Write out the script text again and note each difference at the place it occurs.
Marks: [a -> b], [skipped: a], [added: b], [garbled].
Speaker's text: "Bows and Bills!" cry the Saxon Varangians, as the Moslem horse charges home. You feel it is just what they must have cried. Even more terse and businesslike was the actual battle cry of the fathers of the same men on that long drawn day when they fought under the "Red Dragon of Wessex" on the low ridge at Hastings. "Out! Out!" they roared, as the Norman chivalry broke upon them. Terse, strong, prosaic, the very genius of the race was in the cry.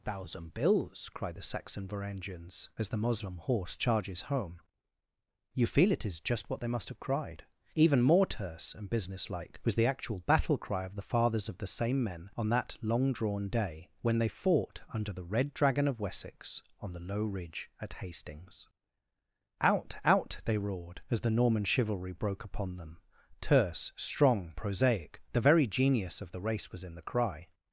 ["Bows and -> Thousand] Bills!" cry the Saxon Varangians, as the Moslem horse charges home. You feel it is just what they must have cried. Even more terse and businesslike was the actual battle cry of the fathers of the same men on that long drawn day when they fought under the "Red Dragon of Wessex" on the low ridge at Hastings. "Out! Out!" they roared, as the Norman chivalry broke upon them. Terse, strong, prosaic, the very genius of the race was in the cry.